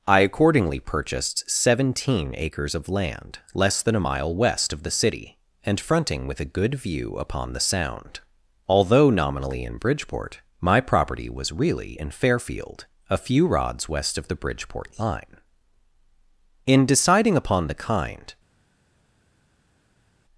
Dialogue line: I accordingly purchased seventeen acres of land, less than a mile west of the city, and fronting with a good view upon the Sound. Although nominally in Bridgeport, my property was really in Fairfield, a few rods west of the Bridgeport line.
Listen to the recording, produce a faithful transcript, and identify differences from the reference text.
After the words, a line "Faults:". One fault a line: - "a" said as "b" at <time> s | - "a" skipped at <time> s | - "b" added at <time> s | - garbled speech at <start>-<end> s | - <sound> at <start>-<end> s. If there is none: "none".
I accordingly purchased seventeen acres of land, less than a mile west of the city, and fronting with a good view upon the Sound. Although nominally in Bridgeport, my property was really in Fairfield, a few rods west of the Bridgeport line. In deciding upon the kind
Faults:
- "In deciding upon the kind" added at 16.7 s